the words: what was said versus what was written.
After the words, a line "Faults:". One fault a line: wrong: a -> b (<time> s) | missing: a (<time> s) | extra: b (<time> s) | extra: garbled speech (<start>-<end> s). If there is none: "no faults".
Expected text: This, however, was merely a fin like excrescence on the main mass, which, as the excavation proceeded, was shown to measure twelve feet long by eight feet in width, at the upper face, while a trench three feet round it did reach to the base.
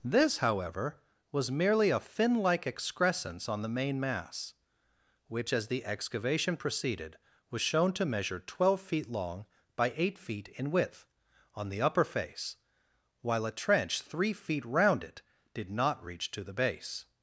This, however, was merely a fin like excrescence on the main mass, which, as the excavation proceeded, was shown to measure twelve feet long by eight feet in width, on the upper face, while a trench three feet round it did not reach to the base.
Faults:
wrong: at -> on (11.5 s)
extra: not (15.7 s)